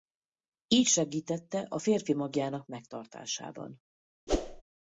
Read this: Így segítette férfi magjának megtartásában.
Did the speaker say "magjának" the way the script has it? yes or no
yes